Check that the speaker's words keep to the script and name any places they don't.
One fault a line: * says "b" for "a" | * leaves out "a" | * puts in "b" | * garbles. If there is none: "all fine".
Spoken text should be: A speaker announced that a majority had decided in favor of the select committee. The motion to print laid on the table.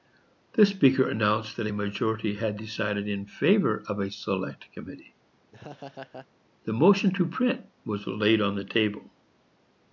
* says "The" for "A"
* says "a" for "the"
* puts in "was"